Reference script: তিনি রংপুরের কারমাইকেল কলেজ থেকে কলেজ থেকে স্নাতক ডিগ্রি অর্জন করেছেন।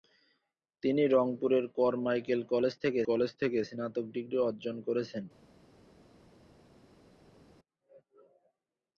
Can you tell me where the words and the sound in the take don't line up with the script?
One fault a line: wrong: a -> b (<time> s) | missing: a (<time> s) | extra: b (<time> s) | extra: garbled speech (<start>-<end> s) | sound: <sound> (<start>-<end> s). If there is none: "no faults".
no faults